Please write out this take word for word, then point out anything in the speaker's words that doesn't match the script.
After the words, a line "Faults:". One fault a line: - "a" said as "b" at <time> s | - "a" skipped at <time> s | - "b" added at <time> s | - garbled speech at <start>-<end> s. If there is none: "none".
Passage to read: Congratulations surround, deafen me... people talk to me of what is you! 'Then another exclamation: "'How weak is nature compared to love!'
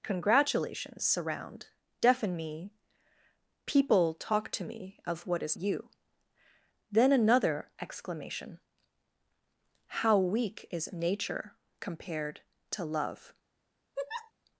Congratulations surround, deafen me... people talk to me of what is you! 'Then another exclamation: "'How weak is nature compared to love!'
Faults:
none